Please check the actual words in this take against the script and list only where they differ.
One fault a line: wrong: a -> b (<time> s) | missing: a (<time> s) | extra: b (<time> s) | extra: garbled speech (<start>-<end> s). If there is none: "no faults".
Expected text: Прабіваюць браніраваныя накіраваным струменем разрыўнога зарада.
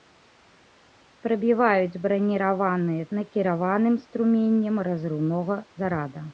no faults